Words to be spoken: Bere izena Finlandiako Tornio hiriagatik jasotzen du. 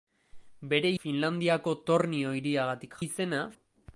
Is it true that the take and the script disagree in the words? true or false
true